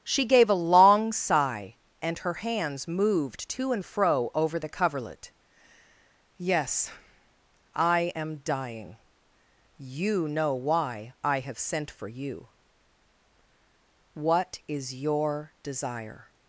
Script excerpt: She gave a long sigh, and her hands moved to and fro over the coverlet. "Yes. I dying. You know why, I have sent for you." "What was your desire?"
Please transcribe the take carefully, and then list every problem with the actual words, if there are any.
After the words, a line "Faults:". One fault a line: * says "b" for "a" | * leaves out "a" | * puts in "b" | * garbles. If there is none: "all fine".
She gave a long sigh, and her hands moved to and fro over the coverlet. "Yes. I am dying. You know why, I have sent for you." "What is your desire?"
Faults:
* puts in "am"
* says "is" for "was"